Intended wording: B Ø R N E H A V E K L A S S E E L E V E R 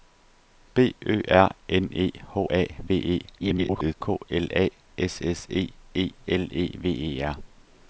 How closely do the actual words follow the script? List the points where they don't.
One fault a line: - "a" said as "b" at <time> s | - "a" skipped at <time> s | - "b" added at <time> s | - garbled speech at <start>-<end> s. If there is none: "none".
- garbled speech at 3.4-3.9 s